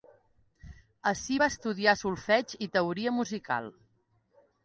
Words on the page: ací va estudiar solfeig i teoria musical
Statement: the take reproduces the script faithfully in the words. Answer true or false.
true